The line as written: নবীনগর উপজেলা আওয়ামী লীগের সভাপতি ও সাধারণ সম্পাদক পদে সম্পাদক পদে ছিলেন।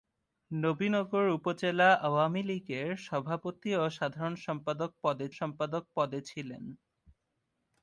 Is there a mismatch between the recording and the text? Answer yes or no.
no